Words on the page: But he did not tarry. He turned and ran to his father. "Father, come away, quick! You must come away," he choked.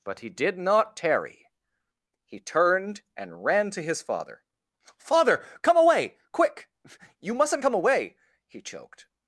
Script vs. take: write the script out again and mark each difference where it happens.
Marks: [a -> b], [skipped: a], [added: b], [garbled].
But he did not tarry. He turned and ran to his father. "Father, come away, quick! You [must -> mustn't] come away," he choked.